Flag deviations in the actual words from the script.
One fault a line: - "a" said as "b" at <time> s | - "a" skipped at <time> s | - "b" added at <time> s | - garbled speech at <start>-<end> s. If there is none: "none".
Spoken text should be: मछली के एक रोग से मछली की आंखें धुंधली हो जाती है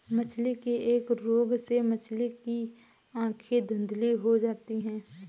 none